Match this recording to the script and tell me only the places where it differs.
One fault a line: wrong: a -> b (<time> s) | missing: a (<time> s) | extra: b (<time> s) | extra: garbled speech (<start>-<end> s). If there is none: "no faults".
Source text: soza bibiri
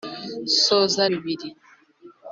no faults